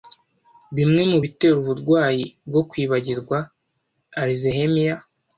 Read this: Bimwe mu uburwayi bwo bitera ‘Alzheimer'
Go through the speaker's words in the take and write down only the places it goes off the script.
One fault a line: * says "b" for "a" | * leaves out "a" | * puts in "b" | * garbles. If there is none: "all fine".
* puts in "bitera"
* says "kwibagirwa" for "bitera"